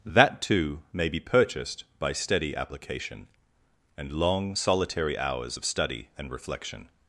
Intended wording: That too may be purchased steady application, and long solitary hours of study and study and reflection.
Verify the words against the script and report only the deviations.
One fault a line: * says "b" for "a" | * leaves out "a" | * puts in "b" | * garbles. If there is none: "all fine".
* puts in "by"
* leaves out "study and"